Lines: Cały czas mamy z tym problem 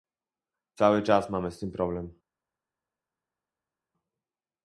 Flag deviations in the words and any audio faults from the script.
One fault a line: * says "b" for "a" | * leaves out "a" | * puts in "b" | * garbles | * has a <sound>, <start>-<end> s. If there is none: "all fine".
all fine